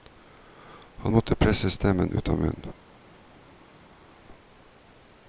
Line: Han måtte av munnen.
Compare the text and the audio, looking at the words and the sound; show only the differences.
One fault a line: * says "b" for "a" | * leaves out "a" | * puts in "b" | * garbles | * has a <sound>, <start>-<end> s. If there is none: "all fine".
* puts in "presse stemmen ut"